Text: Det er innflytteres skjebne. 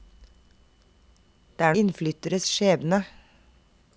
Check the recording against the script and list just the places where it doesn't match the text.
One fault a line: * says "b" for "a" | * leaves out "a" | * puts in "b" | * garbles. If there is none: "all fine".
all fine